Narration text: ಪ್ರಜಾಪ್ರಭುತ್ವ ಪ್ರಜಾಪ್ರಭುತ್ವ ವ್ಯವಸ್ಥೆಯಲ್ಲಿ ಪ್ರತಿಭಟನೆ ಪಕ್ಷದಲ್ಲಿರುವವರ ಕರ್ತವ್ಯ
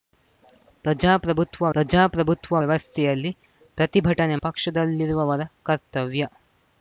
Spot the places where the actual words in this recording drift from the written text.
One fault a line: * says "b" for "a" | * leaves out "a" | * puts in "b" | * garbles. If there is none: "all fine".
all fine